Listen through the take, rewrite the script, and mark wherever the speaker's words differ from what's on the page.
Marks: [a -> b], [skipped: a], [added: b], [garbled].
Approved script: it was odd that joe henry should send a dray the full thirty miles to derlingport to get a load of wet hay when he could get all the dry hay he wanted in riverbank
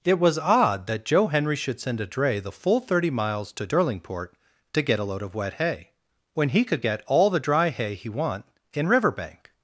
it was odd that joe henry should send a dray the full thirty miles to derlingport to get a load of wet hay when he could get all the dry hay he [wanted -> want] in riverbank